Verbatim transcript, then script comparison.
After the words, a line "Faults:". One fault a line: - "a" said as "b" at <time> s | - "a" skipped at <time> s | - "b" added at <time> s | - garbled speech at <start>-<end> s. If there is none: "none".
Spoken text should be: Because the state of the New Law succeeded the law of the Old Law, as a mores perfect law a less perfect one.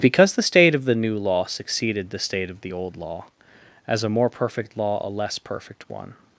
Because the state of the New Law succeeded the state of the Old Law, as a more perfect law a less perfect one.
Faults:
- "law" said as "state" at 2.2 s
- "mores" said as "more" at 4.1 s